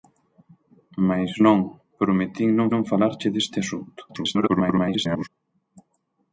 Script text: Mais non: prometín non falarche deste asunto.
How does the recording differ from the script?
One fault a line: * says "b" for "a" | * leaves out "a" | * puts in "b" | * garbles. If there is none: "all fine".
* puts in "non"
* garbles